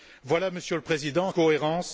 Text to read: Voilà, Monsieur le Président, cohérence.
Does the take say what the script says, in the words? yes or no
yes